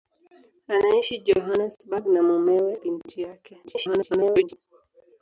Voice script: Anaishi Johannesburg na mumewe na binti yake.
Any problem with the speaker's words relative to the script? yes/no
yes